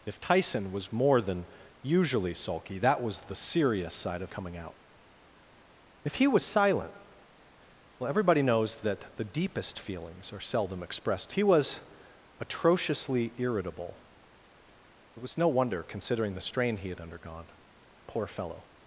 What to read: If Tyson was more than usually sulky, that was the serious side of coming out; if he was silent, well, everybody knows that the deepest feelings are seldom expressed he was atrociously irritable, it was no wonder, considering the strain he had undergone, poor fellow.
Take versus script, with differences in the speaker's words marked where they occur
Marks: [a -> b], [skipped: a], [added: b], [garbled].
If Tyson was more than usually sulky, that was the serious side of coming out; if he was silent, well, everybody knows that the deepest feelings are seldom expressed he was atrociously irritable, it was no wonder, considering the strain he had undergone, poor fellow.